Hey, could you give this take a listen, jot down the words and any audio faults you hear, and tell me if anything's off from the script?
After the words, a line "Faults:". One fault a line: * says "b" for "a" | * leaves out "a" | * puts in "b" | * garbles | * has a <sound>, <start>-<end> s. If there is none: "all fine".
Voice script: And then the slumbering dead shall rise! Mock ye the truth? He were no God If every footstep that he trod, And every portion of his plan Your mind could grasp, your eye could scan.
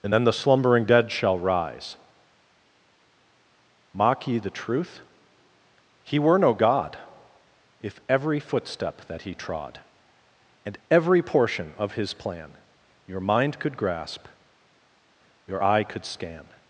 And then the slumbering dead shall rise! Mock ye the truth? He were no God If every footstep that he trod, And every portion of his plan Your mind could grasp, your eye could scan.
Faults:
all fine